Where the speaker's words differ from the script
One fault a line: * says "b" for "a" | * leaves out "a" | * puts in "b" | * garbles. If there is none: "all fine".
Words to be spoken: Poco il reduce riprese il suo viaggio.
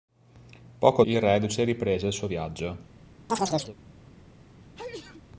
all fine